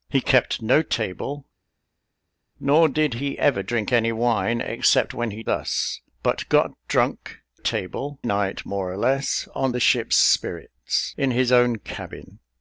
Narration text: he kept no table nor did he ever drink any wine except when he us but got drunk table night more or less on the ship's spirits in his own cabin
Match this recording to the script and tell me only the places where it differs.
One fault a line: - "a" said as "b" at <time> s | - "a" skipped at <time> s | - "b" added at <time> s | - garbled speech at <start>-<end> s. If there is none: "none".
none